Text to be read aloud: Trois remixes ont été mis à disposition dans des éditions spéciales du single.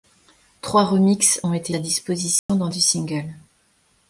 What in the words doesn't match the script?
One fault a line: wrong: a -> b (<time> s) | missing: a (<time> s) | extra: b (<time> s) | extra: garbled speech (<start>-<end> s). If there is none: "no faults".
missing: mis (1.8 s)
missing: des éditions spéciales (2.7 s)